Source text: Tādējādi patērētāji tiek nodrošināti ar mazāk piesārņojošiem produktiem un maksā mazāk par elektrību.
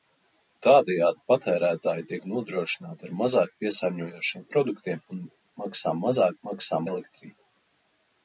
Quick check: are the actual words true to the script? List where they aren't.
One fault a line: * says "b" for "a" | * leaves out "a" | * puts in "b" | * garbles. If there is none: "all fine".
* says "maksā" for "par"